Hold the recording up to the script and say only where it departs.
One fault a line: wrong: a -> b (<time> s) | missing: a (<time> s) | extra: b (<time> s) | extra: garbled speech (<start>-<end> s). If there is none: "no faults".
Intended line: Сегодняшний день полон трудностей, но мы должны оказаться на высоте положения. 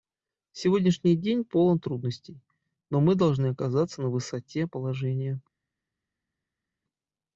no faults